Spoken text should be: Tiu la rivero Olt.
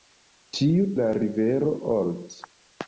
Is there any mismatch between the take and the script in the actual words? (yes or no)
no